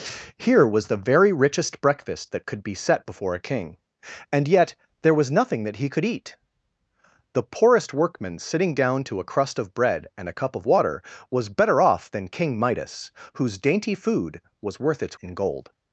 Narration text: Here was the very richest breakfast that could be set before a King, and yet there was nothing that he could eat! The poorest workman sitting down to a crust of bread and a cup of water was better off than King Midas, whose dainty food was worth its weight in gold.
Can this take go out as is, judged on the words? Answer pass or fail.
fail